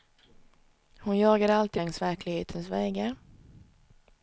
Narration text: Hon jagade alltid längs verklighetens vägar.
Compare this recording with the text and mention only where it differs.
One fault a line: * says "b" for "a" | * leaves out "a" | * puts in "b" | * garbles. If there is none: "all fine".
all fine